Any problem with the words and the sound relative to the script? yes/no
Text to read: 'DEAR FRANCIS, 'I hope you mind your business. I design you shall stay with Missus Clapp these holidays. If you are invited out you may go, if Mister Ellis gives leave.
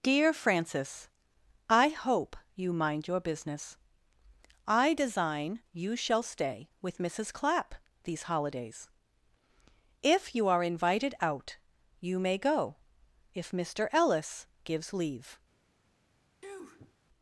yes